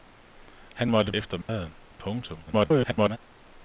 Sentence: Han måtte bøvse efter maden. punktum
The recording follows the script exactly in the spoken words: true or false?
false